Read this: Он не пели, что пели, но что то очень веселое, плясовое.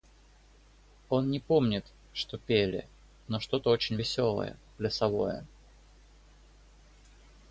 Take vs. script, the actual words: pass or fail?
fail